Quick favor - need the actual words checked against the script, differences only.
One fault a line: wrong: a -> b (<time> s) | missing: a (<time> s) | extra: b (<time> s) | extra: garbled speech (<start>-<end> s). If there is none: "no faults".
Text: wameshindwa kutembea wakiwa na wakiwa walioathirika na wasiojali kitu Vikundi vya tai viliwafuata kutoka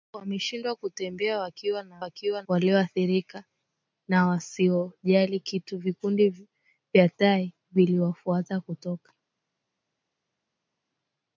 no faults